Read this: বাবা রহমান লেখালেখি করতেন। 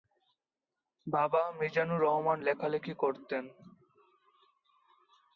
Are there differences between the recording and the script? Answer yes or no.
yes